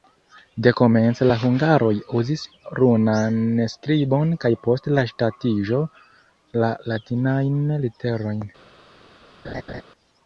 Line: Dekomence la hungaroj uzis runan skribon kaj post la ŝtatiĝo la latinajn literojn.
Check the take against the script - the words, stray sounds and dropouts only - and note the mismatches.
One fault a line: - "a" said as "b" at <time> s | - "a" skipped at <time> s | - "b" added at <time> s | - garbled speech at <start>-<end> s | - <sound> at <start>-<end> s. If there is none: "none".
- laugh at 9.4-9.8 s